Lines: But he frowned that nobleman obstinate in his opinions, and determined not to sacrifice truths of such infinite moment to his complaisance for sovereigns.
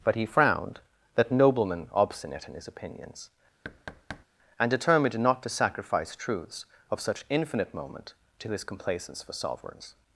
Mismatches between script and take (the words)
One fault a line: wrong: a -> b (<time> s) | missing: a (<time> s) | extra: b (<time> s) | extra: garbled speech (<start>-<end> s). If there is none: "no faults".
no faults